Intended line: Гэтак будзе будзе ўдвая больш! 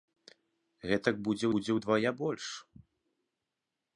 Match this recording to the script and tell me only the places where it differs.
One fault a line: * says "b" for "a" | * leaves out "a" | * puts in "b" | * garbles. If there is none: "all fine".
all fine